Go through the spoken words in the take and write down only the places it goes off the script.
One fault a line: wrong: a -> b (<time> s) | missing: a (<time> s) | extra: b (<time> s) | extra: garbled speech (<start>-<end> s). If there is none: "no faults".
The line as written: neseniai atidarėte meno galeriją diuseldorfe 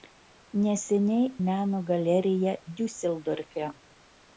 missing: atidarėte (1.3 s)